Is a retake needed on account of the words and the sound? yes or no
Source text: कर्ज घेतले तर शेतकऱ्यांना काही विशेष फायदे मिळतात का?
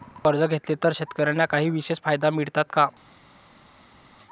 no